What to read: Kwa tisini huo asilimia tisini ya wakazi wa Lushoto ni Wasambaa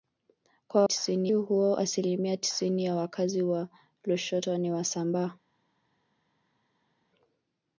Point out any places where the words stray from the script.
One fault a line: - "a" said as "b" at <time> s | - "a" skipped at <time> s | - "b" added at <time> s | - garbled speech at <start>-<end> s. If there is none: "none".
none